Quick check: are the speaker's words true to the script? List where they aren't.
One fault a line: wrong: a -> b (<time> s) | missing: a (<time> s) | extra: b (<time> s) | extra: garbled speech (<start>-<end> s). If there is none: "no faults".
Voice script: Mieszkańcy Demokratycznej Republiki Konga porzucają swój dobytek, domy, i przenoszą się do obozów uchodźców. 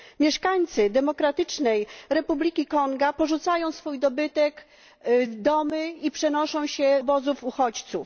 missing: do (7.0 s)